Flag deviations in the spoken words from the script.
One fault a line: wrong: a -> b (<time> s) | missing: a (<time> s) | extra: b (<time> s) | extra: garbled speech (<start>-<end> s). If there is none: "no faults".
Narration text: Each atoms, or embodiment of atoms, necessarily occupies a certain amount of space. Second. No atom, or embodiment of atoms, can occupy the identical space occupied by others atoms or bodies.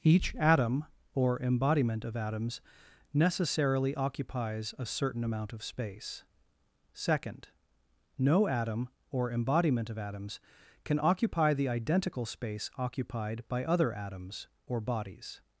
wrong: atoms -> atom (0.3 s)
wrong: others -> other (13.6 s)